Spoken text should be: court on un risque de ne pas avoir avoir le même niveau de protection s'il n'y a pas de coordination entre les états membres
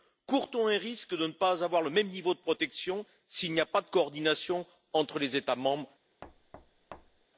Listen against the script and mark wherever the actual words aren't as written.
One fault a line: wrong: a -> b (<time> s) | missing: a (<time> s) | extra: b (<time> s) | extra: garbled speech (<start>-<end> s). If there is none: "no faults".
missing: avoir (1.8 s)